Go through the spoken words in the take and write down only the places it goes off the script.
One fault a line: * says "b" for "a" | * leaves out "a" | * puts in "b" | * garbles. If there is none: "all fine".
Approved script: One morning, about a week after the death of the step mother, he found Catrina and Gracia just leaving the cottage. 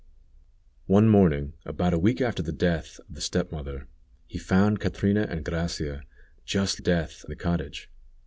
* says "death" for "leaving"